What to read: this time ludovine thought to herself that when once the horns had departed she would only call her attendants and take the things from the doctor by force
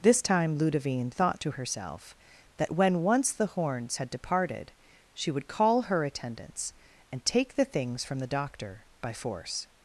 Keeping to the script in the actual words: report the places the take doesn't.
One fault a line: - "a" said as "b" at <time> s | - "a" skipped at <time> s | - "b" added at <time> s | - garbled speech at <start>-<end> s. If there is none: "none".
- "only" skipped at 5.5 s